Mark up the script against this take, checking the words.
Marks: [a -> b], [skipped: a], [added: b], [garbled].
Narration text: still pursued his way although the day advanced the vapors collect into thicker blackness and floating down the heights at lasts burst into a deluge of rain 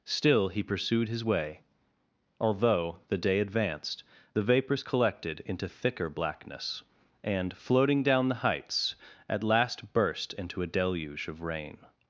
still [added: he] pursued his way although the day advanced the vapors [collect -> collected] into thicker blackness and floating down the heights at [lasts -> last] burst into a deluge of rain